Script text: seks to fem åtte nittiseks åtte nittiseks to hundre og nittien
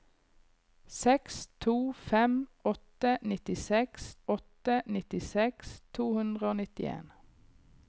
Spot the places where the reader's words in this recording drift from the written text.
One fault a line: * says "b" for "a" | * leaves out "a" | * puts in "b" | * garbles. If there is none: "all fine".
all fine